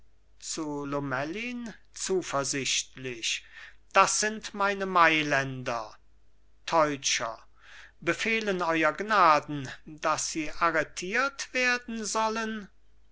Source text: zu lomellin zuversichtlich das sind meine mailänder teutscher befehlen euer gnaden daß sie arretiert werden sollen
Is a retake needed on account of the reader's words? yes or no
no